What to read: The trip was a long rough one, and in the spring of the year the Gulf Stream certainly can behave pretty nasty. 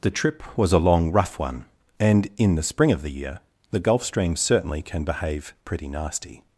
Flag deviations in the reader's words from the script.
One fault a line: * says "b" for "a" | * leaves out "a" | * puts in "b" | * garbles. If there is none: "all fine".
all fine